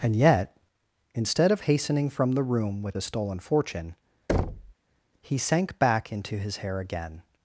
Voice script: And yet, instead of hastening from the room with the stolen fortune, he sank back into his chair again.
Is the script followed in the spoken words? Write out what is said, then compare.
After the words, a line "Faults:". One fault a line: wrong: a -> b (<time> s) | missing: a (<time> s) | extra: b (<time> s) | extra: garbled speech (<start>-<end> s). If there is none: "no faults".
And yet, instead of hastening from the room with the stolen fortune, he sank back into his hair again.
Faults:
wrong: chair -> hair (6.6 s)